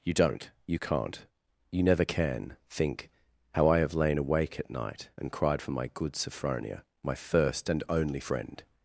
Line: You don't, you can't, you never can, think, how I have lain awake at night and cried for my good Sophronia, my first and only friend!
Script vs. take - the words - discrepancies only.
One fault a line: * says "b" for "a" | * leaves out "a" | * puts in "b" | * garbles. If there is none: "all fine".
all fine